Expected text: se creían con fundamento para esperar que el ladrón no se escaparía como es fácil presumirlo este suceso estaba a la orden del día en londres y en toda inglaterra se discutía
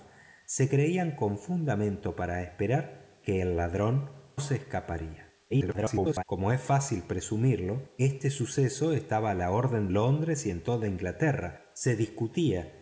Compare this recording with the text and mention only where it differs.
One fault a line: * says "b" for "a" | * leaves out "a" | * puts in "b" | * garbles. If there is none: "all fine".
* leaves out "no"
* garbles
* leaves out "del día en"